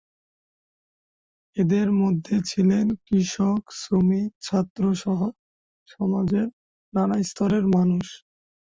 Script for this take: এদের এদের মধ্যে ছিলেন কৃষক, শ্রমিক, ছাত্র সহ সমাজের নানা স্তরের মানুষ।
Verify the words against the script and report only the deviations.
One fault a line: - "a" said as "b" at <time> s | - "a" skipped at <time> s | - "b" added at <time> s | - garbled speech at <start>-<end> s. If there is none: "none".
- "এদের" skipped at 1.9 s